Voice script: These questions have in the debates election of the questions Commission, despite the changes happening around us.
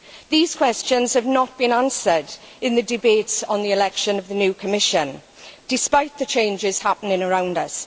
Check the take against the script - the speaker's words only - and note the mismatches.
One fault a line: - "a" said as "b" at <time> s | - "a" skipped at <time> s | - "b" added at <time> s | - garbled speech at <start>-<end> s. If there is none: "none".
- "not been answered" added at 1.3 s
- "on the" added at 3.4 s
- "questions" said as "new" at 4.3 s